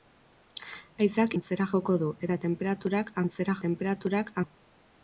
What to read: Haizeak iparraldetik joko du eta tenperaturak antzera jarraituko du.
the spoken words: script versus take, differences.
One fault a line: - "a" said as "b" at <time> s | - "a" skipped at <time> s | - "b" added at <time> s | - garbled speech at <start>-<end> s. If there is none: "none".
- "iparraldetik" said as "antzera" at 1.4 s
- "jarraituko" said as "tenperaturak" at 3.7 s